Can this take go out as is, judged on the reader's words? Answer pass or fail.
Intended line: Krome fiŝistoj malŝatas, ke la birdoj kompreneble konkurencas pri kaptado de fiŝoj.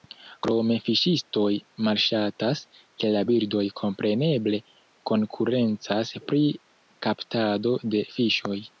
pass